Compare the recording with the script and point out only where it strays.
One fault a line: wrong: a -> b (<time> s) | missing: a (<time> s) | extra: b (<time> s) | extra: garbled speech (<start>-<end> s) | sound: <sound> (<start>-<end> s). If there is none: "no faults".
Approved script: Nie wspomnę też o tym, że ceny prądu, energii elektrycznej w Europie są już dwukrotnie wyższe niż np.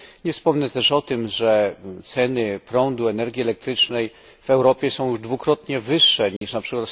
sound: dropout (6.4-6.4 s)